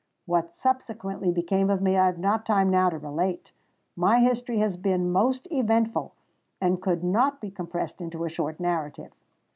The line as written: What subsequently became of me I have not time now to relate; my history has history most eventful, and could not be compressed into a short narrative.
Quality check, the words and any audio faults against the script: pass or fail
fail